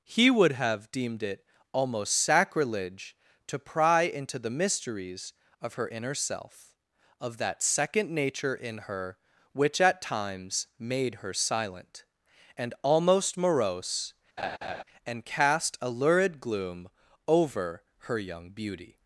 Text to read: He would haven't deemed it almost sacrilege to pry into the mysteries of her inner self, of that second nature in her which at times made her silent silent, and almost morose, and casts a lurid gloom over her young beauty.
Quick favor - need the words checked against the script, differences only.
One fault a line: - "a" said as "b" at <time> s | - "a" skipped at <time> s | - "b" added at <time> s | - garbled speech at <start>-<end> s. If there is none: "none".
- "haven't" said as "have" at 0.5 s
- "silent" skipped at 12.1 s
- "casts" said as "cast" at 15.2 s